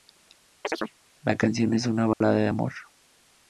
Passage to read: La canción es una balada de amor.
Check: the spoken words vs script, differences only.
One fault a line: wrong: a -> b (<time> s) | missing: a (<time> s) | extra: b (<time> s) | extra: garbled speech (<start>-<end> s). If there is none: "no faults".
no faults